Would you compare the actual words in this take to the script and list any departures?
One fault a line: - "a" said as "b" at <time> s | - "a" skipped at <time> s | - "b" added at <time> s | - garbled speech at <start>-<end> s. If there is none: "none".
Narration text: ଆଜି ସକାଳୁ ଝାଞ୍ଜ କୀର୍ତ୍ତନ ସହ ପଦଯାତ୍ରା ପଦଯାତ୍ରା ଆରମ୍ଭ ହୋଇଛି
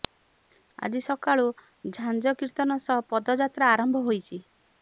- "ପଦଯାତ୍ରା" skipped at 3.7 s